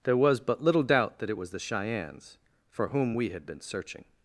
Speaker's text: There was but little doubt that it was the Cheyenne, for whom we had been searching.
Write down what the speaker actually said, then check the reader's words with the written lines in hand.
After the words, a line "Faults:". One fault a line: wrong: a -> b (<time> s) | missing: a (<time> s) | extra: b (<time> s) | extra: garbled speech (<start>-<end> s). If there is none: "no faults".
There was but little doubt that it was the Cheyennes, for whom we had been searching.
Faults:
wrong: Cheyenne -> Cheyennes (1.6 s)